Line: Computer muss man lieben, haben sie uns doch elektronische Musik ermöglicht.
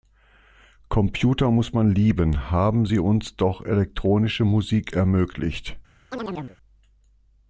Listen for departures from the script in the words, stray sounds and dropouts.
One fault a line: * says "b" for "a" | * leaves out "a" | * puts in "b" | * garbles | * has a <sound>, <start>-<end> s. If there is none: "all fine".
* has a chirp, 6.1-6.6 s